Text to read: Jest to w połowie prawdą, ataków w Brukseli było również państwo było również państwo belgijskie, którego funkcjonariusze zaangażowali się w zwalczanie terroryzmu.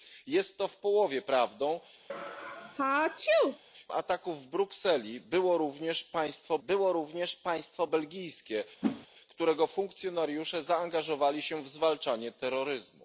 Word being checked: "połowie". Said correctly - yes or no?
yes